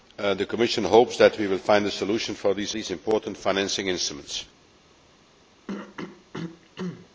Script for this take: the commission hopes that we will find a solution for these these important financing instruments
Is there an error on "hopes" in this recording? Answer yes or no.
no